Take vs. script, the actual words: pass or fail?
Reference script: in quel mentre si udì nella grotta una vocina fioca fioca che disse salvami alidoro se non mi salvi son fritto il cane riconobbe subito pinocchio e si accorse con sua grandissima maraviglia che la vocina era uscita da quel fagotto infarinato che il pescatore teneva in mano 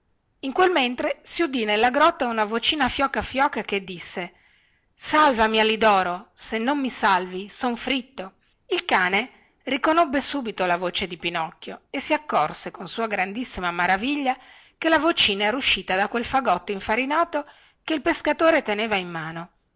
fail